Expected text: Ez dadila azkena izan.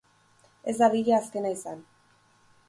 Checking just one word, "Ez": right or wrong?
right